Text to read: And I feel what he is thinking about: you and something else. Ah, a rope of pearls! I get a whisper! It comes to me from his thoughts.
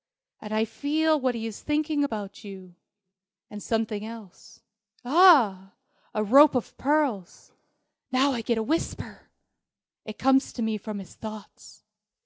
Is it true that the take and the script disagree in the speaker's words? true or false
true